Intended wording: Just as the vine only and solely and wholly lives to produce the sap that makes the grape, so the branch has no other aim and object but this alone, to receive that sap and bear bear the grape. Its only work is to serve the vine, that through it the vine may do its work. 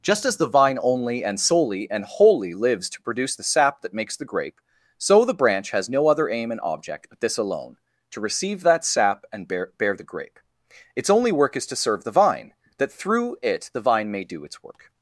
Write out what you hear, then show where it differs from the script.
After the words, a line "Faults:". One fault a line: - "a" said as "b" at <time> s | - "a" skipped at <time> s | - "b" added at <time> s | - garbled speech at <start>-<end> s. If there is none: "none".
Just as the vine only and solely and wholly lives to produce the sap that makes the grape, so the branch has no other aim and object but this alone, to receive that sap and bear bear the grape. Its only work is to serve the vine, that through it the vine may do its work.
Faults:
none